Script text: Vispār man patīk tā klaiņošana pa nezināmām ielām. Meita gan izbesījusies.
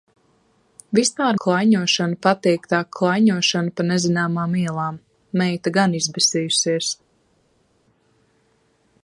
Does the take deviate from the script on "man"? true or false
true